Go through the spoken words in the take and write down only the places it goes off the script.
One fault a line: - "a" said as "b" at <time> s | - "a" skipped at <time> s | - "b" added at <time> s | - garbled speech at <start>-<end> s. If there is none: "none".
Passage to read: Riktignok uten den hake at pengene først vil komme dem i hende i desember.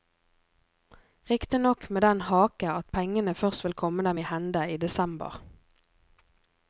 - "uten" said as "med" at 1.9 s